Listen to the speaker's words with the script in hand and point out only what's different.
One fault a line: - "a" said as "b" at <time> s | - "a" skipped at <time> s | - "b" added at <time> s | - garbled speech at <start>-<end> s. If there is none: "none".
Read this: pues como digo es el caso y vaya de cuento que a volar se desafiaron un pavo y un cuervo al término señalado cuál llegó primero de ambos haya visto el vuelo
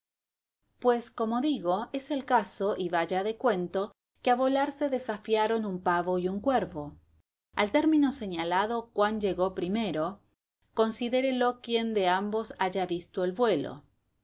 - "considérelo quien" added at 10.7 s